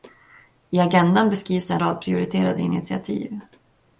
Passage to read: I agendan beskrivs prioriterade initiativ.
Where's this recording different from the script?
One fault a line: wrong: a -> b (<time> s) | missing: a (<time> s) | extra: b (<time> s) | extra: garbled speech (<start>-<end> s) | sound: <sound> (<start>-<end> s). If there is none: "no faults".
extra: en rad (1.7 s)